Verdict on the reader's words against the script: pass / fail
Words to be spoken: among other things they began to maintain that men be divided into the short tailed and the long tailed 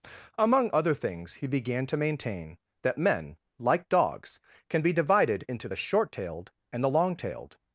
fail